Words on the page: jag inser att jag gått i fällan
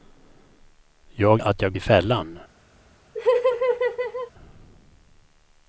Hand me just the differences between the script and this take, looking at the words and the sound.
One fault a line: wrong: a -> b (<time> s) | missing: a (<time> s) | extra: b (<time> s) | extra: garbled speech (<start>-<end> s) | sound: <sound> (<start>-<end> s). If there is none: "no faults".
missing: inser (1.4 s)
missing: gått (1.7 s)
sound: laugh (3.1-4.3 s)